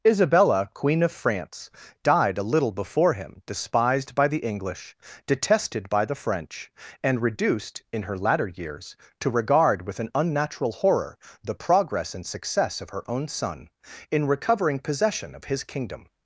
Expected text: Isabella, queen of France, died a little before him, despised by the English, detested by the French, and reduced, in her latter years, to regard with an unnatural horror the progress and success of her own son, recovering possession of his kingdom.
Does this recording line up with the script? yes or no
no